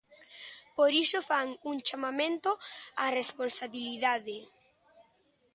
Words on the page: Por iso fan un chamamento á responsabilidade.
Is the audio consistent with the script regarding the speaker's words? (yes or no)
yes